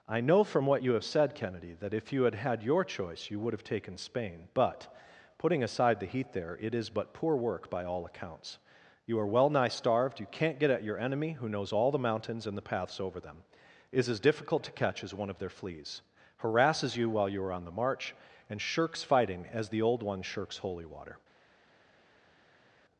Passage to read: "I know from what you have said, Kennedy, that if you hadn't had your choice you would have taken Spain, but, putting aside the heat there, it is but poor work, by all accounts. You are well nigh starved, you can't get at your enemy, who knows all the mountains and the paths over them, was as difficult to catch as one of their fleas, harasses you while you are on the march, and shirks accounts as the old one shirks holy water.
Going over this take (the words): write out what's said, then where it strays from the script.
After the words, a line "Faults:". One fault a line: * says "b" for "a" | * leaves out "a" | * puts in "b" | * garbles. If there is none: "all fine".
"I know from what you have said, Kennedy, that if you had had your choice you would have taken Spain, but, putting aside the heat there, it is but poor work, by all accounts. You are well nigh starved, you can't get at your enemy, who knows all the mountains and the paths over them, is as difficult to catch as one of their fleas, harasses you while you are on the march, and shirks fighting as the old one shirks holy water.
Faults:
* says "had" for "hadn't"
* says "is" for "was"
* says "fighting" for "accounts"